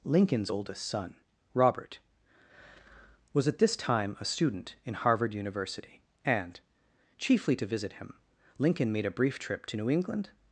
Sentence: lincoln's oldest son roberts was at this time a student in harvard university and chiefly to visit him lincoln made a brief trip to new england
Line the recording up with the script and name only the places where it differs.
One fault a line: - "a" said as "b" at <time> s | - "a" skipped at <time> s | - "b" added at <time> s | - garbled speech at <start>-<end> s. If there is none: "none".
- "roberts" said as "robert" at 1.5 s